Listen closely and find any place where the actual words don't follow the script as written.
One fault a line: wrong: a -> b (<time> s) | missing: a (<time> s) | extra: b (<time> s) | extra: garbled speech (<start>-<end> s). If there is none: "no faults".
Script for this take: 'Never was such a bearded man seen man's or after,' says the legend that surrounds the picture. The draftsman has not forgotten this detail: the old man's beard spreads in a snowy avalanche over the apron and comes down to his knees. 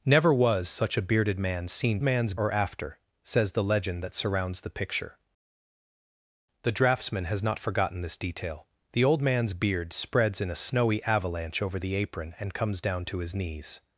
no faults